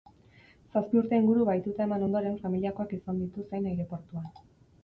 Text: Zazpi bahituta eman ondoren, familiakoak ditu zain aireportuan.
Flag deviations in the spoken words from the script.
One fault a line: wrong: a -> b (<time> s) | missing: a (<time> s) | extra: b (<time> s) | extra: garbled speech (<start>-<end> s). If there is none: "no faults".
extra: urte inguru (1.0 s)
extra: izan (3.0 s)